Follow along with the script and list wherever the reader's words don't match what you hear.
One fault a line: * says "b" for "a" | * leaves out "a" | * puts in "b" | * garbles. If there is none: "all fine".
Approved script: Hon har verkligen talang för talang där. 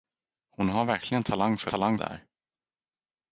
all fine